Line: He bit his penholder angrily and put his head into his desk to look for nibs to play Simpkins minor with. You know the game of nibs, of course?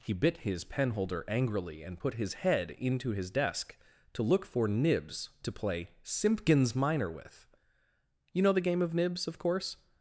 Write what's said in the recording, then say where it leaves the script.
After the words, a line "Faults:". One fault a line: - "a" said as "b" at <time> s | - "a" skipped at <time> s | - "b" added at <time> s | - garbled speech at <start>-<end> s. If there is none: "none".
He bit his penholder angrily and put his head into his desk to look for nibs to play Simpkins minor with. You know the game of nibs, of course?
Faults:
none